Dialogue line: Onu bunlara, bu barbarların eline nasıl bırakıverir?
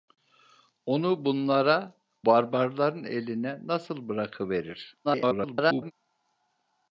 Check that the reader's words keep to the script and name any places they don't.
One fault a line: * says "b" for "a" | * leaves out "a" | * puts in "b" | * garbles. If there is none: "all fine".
* leaves out "bu"
* garbles